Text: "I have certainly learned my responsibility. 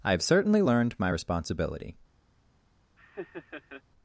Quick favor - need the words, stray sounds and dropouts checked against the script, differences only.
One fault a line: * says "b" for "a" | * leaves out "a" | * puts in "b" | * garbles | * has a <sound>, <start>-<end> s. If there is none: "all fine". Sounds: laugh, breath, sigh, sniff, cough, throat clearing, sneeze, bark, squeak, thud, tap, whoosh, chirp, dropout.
* has a laugh, 3.0-3.8 s